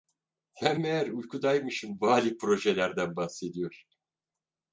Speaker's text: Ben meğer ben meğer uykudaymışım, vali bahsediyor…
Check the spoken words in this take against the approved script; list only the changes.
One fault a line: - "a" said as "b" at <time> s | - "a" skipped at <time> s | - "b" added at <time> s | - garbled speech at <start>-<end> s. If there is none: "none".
- "ben meğer" skipped at 1.1 s
- "projelerden" added at 2.4 s